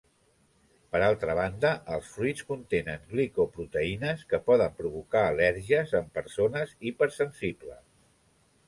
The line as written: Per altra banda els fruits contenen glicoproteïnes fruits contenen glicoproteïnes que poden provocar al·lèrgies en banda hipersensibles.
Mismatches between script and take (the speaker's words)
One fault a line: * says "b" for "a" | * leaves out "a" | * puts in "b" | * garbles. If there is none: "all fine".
* leaves out "fruits contenen glicoproteïnes"
* says "persones" for "banda"